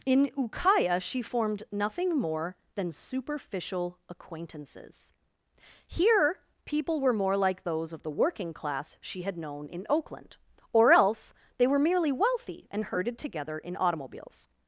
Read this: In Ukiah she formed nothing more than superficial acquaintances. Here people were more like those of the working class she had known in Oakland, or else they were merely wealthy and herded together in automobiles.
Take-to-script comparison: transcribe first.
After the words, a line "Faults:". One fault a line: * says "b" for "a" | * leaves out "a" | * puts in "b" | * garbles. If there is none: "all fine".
In Ukiah she formed nothing more than superficial acquaintances. Here people were more like those of the working class she had known in Oakland, or else they were merely wealthy and herded together in automobiles.
Faults:
all fine